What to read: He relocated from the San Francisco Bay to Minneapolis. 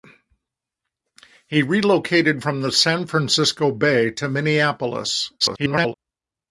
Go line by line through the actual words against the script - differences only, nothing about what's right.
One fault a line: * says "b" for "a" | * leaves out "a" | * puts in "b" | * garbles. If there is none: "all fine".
* garbles